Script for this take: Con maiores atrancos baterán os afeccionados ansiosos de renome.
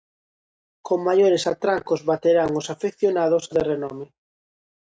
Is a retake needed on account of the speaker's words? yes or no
yes